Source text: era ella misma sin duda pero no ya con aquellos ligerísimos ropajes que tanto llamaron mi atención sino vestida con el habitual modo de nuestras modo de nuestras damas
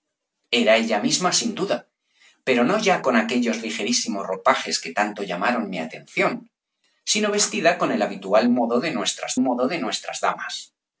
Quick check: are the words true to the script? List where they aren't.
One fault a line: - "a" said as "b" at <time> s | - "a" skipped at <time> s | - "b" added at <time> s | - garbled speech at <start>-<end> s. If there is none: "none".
none